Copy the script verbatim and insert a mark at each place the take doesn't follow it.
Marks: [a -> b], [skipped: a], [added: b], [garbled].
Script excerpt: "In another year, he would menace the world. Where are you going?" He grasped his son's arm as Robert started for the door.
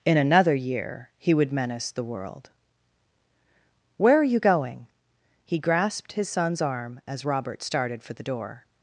"In another year, he would menace the world. Where are you going?" He grasped his son's arm as Robert started for the door.